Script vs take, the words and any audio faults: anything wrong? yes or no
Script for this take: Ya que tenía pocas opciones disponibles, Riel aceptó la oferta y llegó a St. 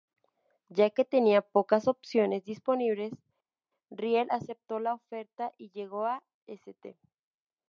no